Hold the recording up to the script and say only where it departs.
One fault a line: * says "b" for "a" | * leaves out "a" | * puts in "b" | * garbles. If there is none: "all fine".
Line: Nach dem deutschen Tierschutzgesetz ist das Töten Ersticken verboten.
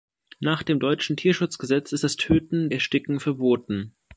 all fine